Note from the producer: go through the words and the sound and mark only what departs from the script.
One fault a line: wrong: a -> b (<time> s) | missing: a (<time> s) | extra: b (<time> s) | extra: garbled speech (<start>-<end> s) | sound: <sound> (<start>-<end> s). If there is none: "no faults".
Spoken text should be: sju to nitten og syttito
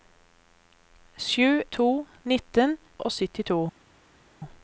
no faults